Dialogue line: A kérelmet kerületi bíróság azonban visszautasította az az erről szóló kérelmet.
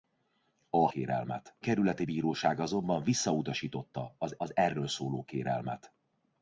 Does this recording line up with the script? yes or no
yes